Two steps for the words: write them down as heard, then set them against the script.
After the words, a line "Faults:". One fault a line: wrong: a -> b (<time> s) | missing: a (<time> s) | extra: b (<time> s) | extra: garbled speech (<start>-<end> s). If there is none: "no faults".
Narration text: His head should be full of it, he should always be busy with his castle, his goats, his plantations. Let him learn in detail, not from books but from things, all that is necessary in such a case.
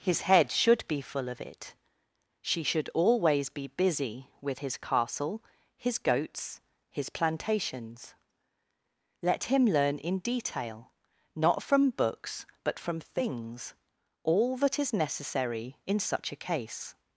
His head should be full of it, she should always be busy with his castle, his goats, his plantations. Let him learn in detail, not from books but from things, all that is necessary in such a case.
Faults:
wrong: he -> she (2.4 s)